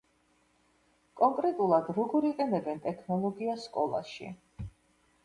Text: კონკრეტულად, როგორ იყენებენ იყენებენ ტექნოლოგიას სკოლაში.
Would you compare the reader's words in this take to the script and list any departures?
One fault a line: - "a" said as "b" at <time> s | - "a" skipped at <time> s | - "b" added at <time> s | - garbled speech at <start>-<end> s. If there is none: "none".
- "იყენებენ" skipped at 2.8 s